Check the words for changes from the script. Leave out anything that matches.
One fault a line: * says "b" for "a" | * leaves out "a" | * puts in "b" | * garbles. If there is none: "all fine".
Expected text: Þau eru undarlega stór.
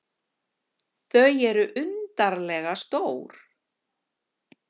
all fine